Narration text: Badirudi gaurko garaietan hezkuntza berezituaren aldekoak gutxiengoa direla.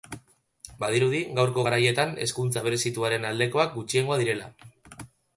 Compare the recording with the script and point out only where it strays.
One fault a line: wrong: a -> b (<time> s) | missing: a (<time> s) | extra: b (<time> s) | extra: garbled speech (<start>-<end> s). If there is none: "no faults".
no faults